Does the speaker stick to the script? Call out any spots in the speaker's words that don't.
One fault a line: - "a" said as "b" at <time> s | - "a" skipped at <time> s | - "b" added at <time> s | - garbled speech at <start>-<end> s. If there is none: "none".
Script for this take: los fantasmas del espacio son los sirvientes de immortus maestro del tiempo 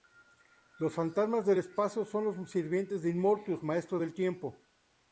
none